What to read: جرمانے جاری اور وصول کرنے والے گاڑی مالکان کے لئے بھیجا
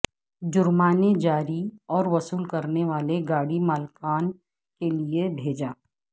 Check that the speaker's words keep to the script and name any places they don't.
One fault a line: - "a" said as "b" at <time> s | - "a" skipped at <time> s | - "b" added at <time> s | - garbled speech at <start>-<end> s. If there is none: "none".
none